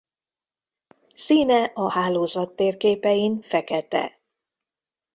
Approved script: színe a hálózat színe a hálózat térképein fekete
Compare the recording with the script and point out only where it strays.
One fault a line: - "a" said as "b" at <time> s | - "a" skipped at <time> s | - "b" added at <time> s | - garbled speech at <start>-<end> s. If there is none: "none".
- "színe a hálózat" skipped at 2.5 s